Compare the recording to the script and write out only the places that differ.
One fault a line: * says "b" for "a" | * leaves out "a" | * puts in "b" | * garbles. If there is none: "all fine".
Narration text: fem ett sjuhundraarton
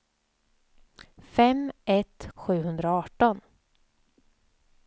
all fine